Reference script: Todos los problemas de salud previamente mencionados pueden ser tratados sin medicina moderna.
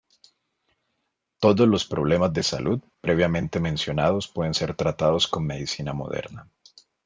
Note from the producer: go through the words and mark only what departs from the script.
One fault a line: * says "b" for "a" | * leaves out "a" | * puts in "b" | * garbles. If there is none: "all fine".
* says "con" for "sin"